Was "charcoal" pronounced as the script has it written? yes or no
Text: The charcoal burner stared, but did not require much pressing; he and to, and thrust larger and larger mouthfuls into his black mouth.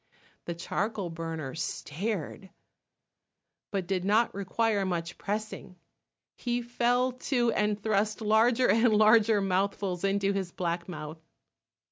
yes